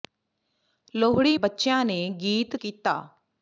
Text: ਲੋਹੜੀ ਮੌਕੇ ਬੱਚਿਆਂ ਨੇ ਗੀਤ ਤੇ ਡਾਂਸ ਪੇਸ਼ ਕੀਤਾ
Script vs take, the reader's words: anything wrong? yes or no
yes